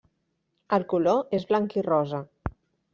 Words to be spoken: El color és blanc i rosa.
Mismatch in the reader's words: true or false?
false